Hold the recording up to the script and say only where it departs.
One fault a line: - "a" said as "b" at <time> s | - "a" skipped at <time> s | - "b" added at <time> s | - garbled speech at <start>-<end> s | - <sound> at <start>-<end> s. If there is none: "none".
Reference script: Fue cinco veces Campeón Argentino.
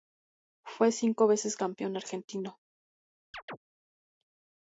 - chirp at 3.3-3.6 s